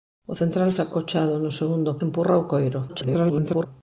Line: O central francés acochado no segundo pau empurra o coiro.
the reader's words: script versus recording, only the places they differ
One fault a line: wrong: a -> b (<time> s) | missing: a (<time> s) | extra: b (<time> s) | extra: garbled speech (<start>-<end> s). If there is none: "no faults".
missing: francés (0.7 s)
missing: pau (1.9 s)
extra: garbled speech (2.9-3.7 s)